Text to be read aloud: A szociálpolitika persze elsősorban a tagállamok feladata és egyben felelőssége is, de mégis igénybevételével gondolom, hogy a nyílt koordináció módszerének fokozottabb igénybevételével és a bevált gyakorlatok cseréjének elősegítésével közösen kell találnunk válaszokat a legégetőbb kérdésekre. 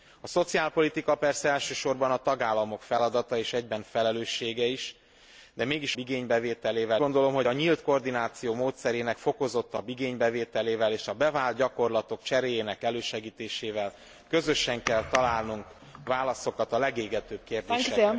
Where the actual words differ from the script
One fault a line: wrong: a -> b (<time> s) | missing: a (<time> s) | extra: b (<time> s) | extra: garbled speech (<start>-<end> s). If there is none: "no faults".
no faults